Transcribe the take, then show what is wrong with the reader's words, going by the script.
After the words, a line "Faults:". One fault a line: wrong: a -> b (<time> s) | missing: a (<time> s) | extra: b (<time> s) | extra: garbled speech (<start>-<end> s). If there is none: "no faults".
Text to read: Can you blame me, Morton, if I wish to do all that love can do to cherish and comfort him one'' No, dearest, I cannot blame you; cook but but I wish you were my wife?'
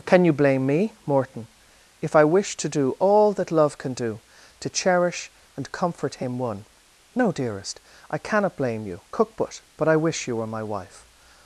Can you blame me, Morton, if I wish to do all that love can do to cherish and comfort him one'' No, dearest, I cannot blame you; cook but but I wish you were my wife?'
Faults:
no faults